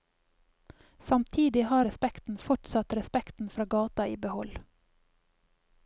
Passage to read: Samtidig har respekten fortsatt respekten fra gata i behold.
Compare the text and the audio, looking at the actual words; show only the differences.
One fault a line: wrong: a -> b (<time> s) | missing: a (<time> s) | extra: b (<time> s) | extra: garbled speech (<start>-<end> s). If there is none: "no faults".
no faults